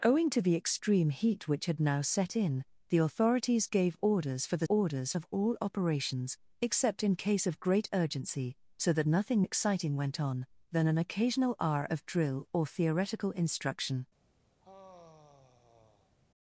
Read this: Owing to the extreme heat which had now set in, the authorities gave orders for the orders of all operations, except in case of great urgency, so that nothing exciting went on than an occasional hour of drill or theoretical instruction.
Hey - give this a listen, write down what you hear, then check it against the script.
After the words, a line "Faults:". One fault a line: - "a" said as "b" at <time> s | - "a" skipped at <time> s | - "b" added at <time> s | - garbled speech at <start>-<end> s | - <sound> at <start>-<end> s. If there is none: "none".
Owing to the extreme heat which had now set in, the authorities gave orders for the orders of all operations, except in case of great urgency, so that nothing exciting went on than an occasional hour of drill or theoretical instruction.
Faults:
- sigh at 14.6-16.2 s